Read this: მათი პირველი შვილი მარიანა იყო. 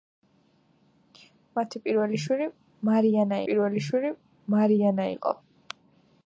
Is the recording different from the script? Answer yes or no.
yes